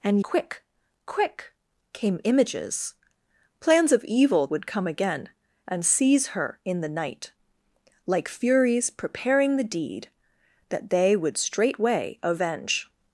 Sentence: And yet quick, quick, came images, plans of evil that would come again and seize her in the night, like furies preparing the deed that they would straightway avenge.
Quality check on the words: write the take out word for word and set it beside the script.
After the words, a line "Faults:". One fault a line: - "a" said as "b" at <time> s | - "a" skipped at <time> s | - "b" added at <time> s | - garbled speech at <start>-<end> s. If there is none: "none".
And quick, quick, came images, plans of evil would come again and seize her in the night, like furies preparing the deed that they would straightway avenge.
Faults:
- "yet" skipped at 0.2 s
- "that" skipped at 4.5 s